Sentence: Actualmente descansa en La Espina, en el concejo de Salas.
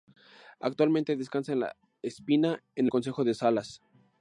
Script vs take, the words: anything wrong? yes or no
no